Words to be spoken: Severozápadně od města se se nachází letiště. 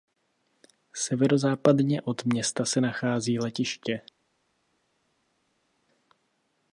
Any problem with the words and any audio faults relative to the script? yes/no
yes